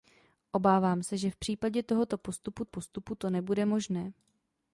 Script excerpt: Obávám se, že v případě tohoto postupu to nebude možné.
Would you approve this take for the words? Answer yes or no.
no